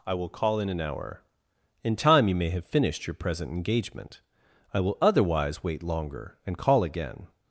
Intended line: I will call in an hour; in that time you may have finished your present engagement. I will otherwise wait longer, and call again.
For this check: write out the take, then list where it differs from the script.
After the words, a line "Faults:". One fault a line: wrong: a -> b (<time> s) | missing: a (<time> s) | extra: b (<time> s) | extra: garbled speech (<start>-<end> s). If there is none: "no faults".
I will call in an hour; in time you may have finished your present engagement. I will otherwise wait longer, and call again.
Faults:
missing: that (1.9 s)